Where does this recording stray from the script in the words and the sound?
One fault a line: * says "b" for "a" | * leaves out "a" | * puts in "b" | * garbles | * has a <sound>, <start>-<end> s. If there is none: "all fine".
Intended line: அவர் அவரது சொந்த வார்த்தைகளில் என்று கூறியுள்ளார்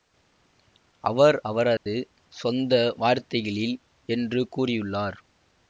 * has a dropout, 1.8-1.9 s